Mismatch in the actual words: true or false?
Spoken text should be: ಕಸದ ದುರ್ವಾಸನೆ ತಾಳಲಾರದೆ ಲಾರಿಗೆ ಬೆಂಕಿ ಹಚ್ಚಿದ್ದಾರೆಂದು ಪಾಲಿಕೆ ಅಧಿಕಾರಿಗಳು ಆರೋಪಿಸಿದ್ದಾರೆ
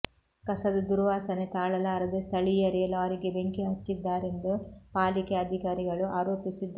true